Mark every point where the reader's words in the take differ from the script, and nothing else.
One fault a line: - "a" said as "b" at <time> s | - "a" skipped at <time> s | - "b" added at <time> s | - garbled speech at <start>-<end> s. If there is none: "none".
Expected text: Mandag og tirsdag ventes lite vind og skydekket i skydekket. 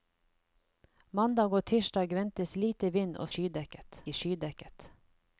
none